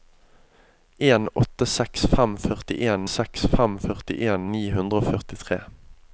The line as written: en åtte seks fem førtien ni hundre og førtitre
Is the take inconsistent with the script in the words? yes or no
yes